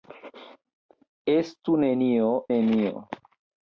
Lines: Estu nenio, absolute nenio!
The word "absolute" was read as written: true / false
false